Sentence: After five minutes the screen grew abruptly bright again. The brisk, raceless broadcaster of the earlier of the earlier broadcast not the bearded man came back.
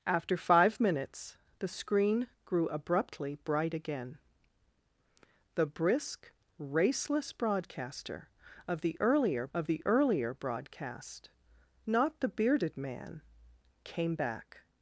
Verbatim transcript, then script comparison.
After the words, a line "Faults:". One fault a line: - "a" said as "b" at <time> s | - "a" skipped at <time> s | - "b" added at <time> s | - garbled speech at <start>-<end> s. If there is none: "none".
After five minutes the screen grew abruptly bright again. The brisk, raceless broadcaster of the earlier of the earlier broadcast not the bearded man came back.
Faults:
none